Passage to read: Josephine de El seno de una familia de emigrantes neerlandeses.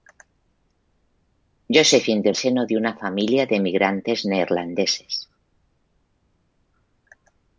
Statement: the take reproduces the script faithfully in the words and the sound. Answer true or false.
true